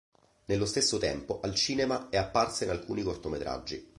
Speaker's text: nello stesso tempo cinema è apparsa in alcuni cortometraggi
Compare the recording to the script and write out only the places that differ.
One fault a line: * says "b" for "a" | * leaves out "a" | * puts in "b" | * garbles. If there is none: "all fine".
* puts in "al"